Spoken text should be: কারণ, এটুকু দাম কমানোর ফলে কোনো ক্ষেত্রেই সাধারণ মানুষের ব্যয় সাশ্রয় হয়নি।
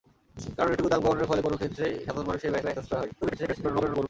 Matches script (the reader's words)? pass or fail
fail